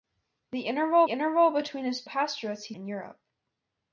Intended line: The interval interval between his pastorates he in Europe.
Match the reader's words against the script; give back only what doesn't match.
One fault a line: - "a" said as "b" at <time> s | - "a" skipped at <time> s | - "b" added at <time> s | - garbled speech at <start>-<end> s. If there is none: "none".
none